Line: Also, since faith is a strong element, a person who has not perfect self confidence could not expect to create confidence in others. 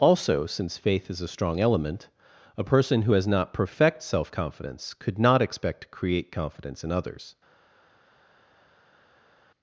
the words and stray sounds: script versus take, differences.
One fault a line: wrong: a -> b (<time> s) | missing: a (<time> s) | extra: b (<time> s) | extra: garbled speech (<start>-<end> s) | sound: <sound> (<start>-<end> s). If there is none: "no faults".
no faults